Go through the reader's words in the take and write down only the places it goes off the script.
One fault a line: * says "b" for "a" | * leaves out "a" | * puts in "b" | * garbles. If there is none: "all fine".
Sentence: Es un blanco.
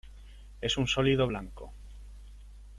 * puts in "sólido"